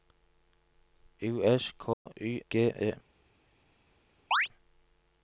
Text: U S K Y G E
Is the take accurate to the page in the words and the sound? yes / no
no